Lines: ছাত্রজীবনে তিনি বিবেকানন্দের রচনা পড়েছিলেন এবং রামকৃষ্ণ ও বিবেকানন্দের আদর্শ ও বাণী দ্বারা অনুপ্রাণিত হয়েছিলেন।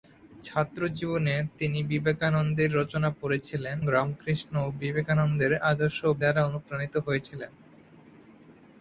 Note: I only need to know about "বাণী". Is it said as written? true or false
false